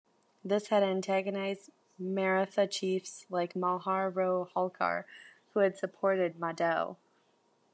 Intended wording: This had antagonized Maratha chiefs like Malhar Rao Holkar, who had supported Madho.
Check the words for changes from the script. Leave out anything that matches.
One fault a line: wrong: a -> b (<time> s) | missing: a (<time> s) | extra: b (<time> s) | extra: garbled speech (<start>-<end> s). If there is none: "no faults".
no faults